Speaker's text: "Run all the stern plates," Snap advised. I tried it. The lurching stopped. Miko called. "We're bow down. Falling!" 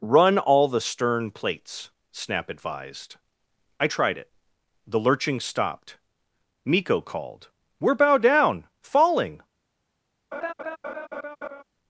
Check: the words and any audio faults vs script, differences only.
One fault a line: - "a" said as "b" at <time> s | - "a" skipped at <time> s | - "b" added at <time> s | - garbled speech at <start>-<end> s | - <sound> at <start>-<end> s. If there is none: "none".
- laugh at 10.3-11.6 s